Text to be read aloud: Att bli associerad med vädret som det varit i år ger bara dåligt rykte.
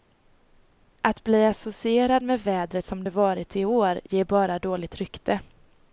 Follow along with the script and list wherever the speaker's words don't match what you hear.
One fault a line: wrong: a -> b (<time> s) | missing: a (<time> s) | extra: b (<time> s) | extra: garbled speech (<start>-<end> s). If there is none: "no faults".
no faults